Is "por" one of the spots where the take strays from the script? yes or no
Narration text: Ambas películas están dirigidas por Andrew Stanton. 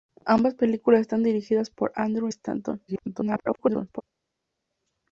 no